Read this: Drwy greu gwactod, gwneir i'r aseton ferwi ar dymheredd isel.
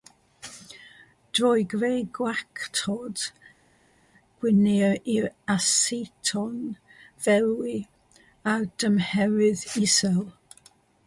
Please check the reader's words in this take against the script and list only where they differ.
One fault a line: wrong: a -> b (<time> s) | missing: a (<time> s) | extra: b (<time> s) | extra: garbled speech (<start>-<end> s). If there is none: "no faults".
no faults